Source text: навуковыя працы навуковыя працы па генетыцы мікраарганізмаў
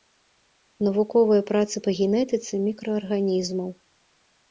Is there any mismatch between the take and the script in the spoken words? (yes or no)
yes